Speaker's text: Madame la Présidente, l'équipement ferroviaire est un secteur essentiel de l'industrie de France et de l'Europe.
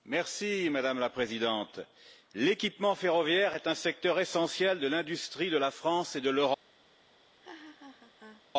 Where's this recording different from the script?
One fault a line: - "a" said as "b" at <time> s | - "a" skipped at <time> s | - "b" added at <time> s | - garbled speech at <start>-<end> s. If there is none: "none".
- "la" added at 5.6 s